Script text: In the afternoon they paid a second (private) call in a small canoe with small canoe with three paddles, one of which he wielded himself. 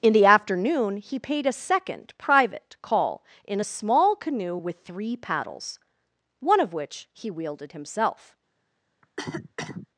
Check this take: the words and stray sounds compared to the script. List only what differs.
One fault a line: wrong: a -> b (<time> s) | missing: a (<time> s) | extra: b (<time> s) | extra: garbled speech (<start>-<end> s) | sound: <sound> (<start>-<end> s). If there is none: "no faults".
wrong: they -> he (1.0 s)
missing: small canoe with (4.8 s)
sound: cough (9.0-9.9 s)